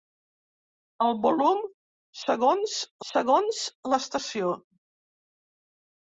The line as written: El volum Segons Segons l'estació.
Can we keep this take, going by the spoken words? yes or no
yes